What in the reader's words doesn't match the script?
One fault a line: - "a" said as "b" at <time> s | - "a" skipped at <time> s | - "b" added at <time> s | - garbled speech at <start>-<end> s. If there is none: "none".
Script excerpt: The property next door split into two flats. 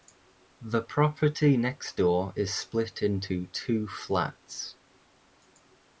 - "is" added at 2.4 s